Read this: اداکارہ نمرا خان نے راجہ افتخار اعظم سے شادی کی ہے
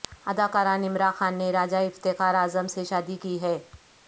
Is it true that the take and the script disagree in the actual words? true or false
false